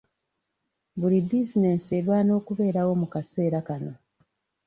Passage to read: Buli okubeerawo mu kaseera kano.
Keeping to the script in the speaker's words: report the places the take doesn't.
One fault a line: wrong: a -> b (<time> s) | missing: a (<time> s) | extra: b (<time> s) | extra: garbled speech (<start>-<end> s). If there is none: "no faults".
extra: bizinensi erwana (1.3 s)